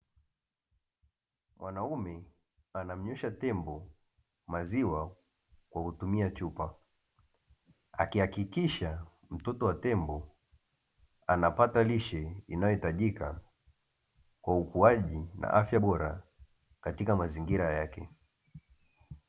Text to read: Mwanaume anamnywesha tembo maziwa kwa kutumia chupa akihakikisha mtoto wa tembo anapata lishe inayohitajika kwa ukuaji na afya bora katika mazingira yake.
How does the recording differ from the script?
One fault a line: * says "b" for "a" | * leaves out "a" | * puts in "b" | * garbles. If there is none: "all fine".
all fine